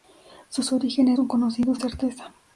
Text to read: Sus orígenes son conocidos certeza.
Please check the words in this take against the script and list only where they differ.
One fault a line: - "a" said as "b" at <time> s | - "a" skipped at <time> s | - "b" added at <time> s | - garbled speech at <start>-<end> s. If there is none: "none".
none